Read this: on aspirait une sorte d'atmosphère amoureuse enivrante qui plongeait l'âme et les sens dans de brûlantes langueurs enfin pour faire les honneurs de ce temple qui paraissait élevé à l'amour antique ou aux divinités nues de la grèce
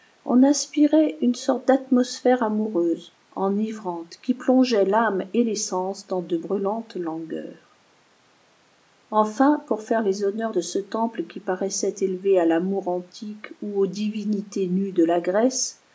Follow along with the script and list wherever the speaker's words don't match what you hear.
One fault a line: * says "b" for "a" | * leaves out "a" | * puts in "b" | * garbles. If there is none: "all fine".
all fine